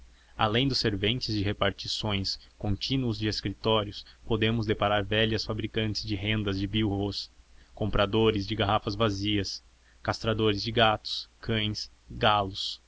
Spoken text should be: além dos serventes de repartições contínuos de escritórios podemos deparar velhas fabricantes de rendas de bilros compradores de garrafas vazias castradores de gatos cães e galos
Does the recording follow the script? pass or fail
pass